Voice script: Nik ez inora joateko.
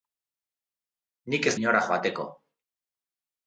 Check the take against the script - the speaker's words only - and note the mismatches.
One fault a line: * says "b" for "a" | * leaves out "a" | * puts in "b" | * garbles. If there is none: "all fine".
all fine